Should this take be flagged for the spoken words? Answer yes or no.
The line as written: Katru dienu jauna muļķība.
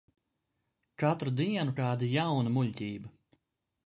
yes